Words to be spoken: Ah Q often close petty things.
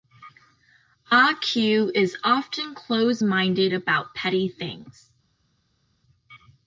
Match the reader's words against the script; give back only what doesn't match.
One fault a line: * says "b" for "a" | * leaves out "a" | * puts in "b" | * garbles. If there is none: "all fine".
* puts in "is"
* puts in "minded about"